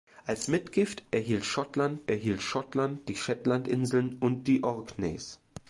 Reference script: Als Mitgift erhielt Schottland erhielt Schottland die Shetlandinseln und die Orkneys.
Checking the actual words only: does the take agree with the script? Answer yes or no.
yes